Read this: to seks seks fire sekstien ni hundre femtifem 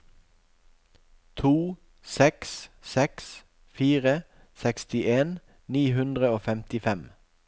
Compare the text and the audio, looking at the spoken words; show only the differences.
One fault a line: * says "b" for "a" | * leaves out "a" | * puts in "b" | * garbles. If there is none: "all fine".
* puts in "og"